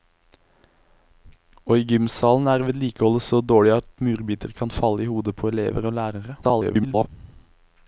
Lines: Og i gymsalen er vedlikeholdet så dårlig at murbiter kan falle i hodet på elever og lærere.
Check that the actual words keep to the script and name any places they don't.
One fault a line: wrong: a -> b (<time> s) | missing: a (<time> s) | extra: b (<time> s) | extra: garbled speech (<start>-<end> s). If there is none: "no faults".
extra: garbled speech (6.4-7.1 s)